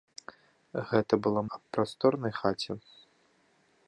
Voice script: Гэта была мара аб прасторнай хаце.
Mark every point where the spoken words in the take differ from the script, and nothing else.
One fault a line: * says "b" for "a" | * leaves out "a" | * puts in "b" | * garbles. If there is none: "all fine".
* leaves out "мара"